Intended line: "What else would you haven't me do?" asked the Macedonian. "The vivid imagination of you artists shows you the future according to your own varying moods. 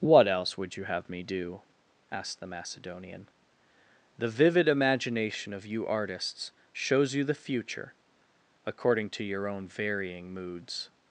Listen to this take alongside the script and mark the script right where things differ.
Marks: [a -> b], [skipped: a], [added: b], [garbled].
"What else would you [haven't -> have] me do?" asked the Macedonian. "The vivid imagination of you artists shows you the future according to your own varying moods.